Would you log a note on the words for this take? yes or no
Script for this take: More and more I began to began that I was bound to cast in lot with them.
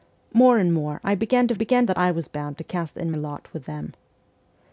no